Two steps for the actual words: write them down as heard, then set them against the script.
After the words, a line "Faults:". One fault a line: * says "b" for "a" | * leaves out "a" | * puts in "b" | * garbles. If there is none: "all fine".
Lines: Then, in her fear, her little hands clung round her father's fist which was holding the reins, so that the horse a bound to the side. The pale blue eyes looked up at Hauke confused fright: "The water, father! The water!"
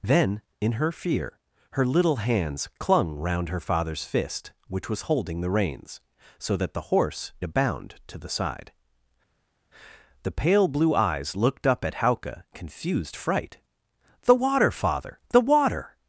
Then, in her fear, her little hands clung round her father's fist which was holding the reins, so that the horse a bound to the side. The pale blue eyes looked up at Hauke confused fright: "The water, father! The water!"
Faults:
all fine